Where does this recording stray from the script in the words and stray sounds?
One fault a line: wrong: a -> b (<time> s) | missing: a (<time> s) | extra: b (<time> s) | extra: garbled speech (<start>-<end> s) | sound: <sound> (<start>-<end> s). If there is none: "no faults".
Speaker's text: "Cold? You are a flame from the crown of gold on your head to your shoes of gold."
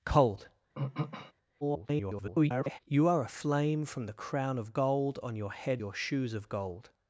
sound: throat clearing (0.8-1.3 s)
extra: garbled speech (1.6-2.8 s)
missing: to (5.8 s)